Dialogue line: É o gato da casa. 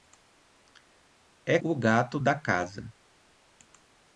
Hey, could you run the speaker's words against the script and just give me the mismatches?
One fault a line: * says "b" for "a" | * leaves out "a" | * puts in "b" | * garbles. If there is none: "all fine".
all fine